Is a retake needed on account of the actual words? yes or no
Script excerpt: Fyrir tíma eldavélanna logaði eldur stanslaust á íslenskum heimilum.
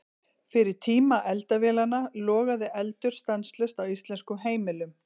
no